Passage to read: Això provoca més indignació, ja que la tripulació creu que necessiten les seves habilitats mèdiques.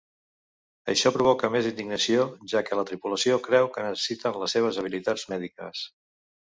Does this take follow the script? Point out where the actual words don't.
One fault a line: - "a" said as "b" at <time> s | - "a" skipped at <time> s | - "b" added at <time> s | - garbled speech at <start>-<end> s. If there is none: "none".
none